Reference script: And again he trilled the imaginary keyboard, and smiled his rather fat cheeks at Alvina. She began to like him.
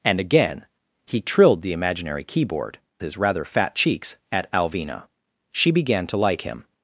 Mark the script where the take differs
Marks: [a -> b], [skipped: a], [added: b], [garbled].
And again he trilled the imaginary keyboard, [skipped: and smiled] his rather fat cheeks at Alvina. She began to like him.